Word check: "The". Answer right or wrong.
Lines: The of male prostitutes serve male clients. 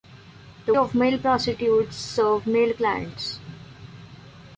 right